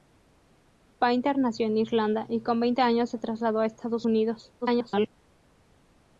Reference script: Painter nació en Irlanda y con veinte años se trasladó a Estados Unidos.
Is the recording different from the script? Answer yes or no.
yes